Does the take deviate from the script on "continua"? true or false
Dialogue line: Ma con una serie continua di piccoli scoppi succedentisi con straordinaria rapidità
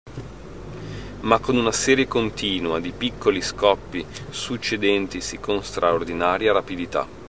false